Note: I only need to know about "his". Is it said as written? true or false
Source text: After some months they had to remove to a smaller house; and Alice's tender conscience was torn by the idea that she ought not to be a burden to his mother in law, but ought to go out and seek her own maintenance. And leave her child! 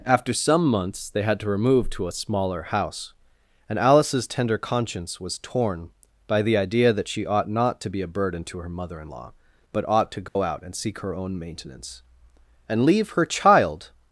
false